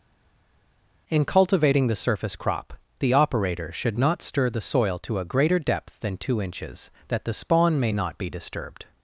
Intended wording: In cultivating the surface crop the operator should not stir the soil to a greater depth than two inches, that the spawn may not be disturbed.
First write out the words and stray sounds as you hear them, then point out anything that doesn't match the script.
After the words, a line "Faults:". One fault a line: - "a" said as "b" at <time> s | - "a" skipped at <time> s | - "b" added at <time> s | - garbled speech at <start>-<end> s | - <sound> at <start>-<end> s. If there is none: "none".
In cultivating the surface crop the operator should not stir the soil to a greater depth than two inches, that the spawn may not be disturbed.
Faults:
none